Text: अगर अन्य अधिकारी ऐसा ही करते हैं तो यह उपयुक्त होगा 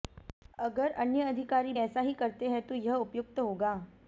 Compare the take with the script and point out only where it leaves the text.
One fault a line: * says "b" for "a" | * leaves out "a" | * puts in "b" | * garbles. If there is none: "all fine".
all fine